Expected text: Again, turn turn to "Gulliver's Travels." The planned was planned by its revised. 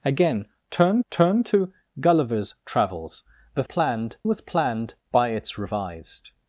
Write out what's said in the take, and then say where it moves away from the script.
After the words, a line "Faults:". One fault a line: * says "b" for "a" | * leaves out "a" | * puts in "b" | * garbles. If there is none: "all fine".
Again, turn turn to "Gulliver's Travels." The planned was planned by its revised.
Faults:
all fine